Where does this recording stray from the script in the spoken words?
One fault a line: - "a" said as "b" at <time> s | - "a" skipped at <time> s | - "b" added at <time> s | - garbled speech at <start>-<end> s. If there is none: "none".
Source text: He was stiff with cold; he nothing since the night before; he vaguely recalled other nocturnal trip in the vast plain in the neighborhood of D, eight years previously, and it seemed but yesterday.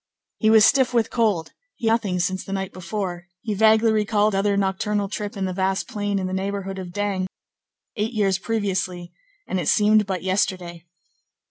none